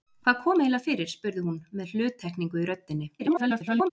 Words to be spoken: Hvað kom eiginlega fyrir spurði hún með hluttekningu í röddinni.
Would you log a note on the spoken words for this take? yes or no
yes